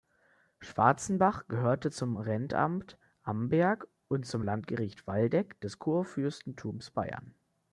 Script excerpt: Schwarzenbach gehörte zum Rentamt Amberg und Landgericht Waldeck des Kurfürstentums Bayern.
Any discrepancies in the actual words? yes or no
yes